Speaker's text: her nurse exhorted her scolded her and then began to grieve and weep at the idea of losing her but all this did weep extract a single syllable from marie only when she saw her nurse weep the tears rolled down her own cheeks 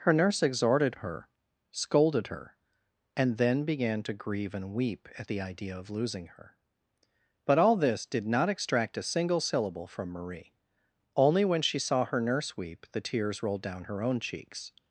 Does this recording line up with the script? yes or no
no